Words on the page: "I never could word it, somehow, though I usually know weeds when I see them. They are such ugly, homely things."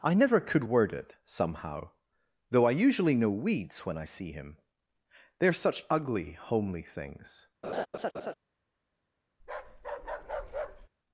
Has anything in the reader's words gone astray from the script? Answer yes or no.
yes